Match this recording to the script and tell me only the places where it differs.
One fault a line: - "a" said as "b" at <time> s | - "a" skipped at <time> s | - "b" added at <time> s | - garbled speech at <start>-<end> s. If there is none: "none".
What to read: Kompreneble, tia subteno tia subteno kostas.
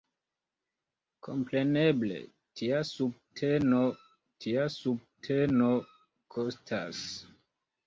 none